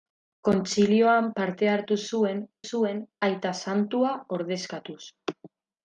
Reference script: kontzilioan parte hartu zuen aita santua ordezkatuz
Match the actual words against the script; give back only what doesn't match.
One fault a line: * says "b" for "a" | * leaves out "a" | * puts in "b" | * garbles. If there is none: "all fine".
* puts in "zuen"